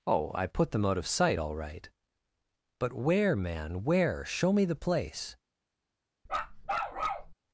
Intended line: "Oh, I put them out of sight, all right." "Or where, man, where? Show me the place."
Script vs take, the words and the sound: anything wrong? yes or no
yes